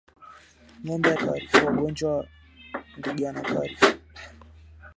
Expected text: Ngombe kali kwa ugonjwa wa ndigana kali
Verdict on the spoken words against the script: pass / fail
pass